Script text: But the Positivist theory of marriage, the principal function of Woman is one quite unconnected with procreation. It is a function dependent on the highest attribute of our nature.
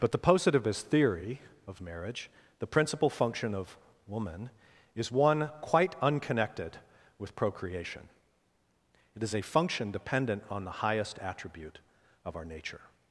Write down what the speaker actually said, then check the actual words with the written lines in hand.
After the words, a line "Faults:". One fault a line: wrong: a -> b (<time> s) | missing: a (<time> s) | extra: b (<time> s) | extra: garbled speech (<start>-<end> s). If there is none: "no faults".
But the Positivist theory of marriage, the principal function of Woman is one quite unconnected with procreation. It is a function dependent on the highest attribute of our nature.
Faults:
no faults